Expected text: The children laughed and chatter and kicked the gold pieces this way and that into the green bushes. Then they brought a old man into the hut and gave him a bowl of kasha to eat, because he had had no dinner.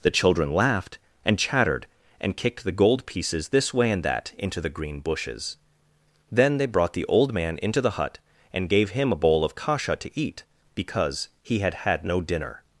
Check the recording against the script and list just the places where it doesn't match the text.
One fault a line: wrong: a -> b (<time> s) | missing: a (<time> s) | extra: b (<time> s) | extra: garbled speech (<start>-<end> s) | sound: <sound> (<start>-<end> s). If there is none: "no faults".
wrong: chatter -> chattered (1.4 s)
wrong: a -> the (6.9 s)